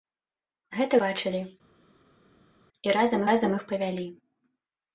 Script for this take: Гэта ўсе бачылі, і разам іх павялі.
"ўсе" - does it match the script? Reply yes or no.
no